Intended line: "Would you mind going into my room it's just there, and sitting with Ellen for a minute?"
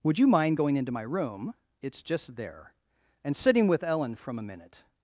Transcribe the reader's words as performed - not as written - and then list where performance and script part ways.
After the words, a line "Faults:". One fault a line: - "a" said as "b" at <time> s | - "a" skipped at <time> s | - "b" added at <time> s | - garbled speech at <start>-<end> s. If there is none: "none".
"Would you mind going into my room it's just there, and sitting with Ellen from a minute?"
Faults:
- "for" said as "from" at 4.2 s